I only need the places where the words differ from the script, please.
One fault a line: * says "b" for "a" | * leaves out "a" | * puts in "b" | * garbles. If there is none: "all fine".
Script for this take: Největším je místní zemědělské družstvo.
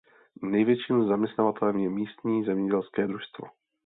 * puts in "zaměstnavatelem"